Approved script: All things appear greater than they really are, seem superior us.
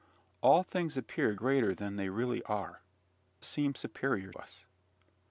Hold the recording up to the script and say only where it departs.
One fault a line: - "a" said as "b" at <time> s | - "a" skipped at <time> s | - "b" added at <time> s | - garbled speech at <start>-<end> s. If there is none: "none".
none